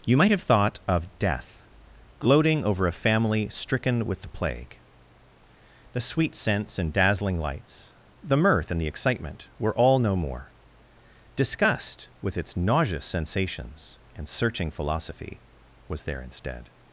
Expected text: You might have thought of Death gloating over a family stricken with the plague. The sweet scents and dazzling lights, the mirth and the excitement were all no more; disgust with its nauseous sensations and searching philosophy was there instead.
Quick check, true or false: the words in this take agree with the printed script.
true